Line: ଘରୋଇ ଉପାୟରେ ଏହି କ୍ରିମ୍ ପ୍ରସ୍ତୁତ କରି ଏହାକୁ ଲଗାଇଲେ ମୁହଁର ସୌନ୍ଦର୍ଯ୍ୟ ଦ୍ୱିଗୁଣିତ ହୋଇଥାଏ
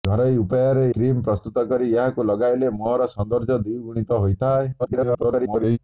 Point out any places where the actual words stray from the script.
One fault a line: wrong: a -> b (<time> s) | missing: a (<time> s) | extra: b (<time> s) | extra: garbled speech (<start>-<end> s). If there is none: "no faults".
missing: ଏହି (0.8 s)
extra: garbled speech (4.8-5.8 s)